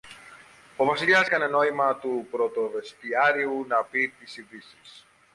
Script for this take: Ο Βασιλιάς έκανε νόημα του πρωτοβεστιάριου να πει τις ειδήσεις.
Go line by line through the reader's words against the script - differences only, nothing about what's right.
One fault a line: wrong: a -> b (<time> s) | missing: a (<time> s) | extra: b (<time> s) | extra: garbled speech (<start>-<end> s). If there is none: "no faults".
no faults